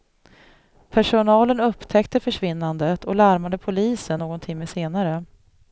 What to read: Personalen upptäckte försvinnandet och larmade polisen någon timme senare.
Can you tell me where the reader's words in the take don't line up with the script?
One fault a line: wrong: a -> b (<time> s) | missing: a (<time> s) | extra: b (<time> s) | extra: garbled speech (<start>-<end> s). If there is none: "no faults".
no faults